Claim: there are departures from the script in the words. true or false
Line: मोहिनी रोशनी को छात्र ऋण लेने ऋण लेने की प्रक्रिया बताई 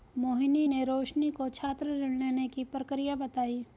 true